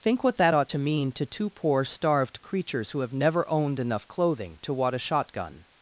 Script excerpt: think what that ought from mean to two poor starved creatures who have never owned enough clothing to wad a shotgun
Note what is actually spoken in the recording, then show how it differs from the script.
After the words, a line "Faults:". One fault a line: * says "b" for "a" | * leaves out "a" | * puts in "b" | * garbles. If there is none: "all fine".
think what that ought to mean to two poor starved creatures who have never owned enough clothing to wad a shotgun
Faults:
* says "to" for "from"